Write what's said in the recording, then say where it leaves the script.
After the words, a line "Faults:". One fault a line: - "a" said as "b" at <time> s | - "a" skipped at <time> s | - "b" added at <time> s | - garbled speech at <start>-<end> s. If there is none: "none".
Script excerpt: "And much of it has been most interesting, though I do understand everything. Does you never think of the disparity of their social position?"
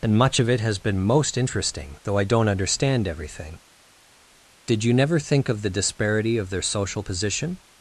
"And much of it has been most interesting, though I don't understand everything. Did you never think of the disparity of their social position?"
Faults:
- "do" said as "don't" at 2.2 s
- "Does" said as "Did" at 4.7 s